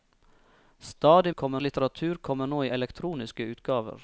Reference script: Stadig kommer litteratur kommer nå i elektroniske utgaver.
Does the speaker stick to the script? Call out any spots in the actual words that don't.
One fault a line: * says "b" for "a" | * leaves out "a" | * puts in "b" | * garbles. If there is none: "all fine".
all fine